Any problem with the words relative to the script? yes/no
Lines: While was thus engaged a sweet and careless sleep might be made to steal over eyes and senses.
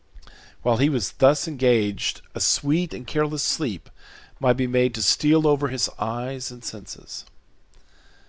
yes